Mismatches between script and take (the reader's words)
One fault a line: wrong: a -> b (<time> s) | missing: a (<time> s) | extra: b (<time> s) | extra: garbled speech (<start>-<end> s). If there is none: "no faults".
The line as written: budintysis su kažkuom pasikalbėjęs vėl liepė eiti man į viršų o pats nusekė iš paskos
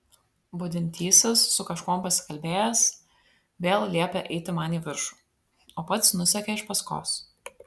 no faults